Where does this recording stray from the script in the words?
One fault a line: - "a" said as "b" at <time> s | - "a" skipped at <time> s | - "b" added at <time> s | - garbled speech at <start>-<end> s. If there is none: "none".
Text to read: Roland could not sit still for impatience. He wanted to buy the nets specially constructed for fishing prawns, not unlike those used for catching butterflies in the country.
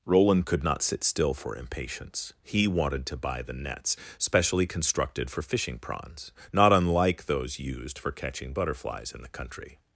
none